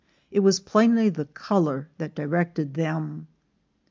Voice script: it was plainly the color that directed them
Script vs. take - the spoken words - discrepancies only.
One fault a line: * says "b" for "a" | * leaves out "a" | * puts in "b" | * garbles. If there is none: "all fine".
all fine